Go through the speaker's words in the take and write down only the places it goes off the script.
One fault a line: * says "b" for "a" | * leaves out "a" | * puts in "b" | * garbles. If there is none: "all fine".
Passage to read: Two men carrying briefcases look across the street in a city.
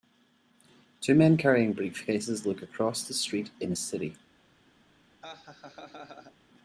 all fine